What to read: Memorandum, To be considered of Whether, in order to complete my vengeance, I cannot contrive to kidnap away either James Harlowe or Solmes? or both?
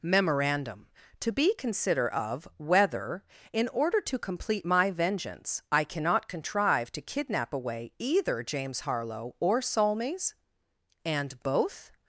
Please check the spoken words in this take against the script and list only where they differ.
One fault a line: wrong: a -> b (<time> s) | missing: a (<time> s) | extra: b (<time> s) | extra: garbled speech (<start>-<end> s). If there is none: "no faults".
wrong: considered -> consider (1.6 s)
wrong: or -> and (11.1 s)